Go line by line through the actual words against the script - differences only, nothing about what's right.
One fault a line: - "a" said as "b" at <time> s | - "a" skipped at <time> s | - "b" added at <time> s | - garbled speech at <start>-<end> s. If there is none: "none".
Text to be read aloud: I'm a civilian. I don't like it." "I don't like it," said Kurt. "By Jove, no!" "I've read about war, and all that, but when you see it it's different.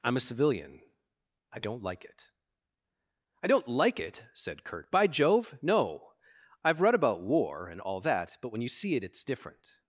none